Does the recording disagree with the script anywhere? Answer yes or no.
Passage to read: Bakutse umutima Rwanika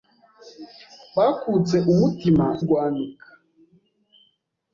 no